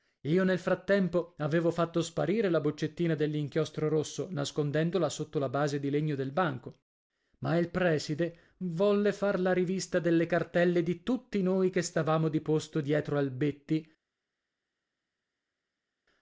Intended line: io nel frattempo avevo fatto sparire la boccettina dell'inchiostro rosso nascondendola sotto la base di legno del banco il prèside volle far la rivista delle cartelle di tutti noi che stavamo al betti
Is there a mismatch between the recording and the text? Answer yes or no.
yes